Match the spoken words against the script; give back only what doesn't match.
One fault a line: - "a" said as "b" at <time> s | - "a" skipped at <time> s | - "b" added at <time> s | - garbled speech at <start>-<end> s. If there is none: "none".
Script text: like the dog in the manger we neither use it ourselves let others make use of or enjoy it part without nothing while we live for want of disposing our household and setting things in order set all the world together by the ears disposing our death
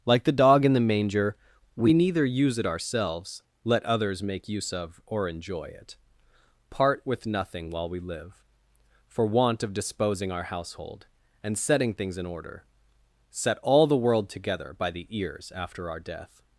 - "without" said as "with" at 7.0 s
- "disposing" said as "after" at 15.5 s